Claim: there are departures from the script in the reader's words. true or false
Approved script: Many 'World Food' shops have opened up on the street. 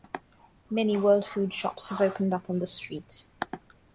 false